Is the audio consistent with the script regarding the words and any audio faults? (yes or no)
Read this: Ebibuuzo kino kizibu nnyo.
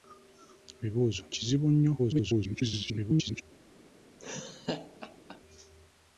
no